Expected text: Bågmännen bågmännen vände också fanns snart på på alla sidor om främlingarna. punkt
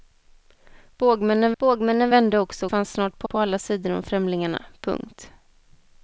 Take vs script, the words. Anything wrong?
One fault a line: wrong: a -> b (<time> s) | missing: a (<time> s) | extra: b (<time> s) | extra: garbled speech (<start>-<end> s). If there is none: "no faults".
no faults